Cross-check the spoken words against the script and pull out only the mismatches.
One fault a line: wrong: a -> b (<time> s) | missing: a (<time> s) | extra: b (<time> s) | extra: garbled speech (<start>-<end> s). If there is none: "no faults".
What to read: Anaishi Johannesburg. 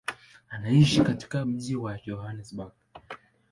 extra: katika mji wa (1.0 s)